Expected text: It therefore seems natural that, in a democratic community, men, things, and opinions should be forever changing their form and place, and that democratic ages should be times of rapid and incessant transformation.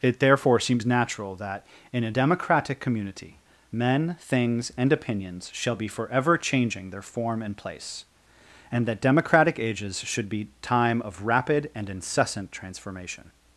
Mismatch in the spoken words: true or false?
true